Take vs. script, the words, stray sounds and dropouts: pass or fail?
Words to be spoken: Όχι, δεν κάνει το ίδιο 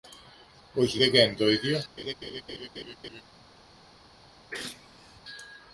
fail